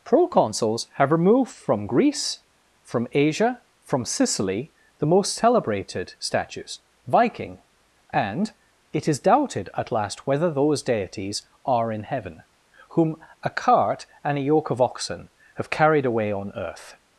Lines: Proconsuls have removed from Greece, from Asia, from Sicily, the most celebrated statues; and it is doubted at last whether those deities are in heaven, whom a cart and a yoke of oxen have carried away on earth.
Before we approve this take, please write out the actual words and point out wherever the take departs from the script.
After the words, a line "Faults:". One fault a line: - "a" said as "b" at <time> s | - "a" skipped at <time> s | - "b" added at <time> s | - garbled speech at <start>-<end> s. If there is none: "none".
Proconsuls have removed from Greece, from Asia, from Sicily, the most celebrated statues; viking and it is doubted at last whether those deities are in heaven, whom a cart and a yoke of oxen have carried away on earth.
Faults:
- "viking" added at 7.1 s